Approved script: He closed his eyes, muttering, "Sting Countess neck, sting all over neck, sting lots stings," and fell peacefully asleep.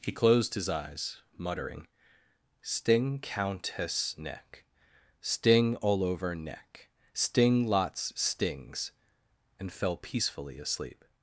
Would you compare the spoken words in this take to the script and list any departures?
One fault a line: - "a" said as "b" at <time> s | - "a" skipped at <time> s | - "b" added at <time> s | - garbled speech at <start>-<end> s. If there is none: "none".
none